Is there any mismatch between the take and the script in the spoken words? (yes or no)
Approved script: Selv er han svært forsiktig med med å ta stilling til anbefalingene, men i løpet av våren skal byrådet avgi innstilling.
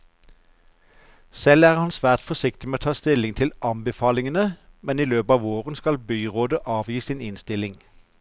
yes